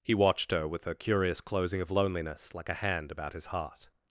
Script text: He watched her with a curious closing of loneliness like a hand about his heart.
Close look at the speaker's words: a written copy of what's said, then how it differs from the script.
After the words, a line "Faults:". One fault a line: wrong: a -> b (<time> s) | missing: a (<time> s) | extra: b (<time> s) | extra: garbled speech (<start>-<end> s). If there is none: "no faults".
He watched her with a curious closing of loneliness like a hand about his heart.
Faults:
no faults